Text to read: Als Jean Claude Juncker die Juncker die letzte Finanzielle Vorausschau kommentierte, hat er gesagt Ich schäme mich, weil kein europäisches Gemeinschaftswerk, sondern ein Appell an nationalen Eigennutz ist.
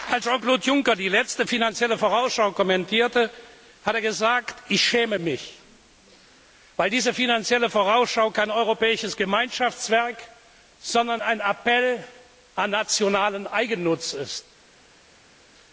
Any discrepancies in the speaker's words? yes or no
yes